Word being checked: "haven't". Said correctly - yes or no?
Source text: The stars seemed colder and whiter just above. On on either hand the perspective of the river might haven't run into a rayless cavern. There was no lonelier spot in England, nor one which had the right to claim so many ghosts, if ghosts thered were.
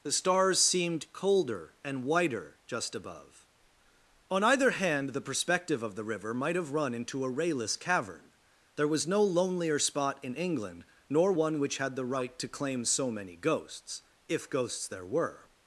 no